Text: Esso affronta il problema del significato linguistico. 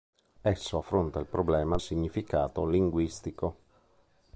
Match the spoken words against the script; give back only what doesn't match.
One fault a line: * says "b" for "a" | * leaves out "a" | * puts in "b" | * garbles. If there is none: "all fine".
* leaves out "del"